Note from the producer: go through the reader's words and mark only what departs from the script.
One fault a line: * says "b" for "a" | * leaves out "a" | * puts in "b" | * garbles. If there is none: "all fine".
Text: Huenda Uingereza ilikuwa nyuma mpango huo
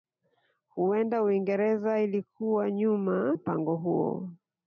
all fine